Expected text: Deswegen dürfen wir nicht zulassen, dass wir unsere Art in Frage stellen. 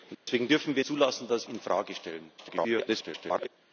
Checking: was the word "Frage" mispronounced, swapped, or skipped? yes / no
no